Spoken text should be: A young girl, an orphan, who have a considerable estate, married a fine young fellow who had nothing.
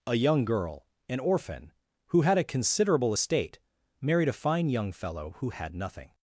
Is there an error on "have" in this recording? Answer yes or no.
yes